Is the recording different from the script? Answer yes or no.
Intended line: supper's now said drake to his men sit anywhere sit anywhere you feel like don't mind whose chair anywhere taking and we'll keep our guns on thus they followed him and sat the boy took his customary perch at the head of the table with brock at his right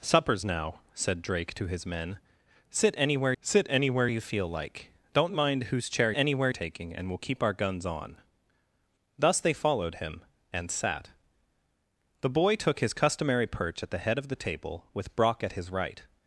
no